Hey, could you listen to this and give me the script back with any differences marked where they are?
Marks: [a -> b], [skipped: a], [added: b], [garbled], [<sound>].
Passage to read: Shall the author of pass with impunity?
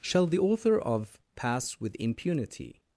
Shall the author of pass with impunity?